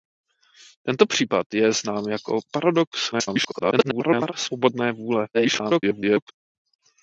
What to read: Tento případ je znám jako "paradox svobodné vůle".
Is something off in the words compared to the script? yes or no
yes